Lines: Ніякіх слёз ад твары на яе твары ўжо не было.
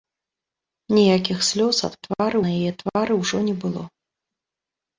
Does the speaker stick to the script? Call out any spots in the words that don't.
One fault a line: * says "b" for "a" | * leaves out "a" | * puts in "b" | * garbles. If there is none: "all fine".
all fine